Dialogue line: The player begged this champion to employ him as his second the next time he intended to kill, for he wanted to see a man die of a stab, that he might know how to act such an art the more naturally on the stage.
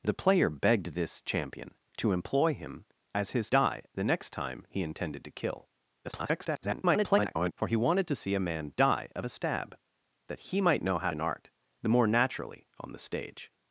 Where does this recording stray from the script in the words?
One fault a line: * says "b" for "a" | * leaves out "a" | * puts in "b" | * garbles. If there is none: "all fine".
* says "die" for "second"
* garbles
* leaves out "to act such"